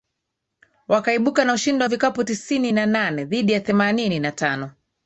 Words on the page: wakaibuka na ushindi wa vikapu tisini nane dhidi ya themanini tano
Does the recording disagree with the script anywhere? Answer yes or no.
yes